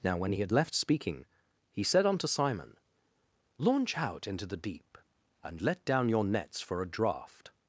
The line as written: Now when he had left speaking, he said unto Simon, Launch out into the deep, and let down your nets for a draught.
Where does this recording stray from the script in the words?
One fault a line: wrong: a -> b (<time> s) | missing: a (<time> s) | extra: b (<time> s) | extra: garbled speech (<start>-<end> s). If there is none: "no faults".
no faults